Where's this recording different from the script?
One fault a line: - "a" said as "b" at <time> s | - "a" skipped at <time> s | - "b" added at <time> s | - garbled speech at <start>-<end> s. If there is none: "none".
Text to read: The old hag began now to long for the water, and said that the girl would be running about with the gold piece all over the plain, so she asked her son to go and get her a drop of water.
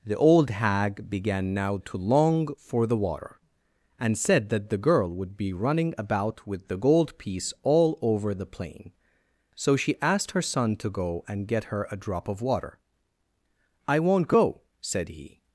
- "I won't go said he" added at 13.9 s